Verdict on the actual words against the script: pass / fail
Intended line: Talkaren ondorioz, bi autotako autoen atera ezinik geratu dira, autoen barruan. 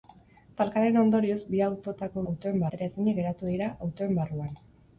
pass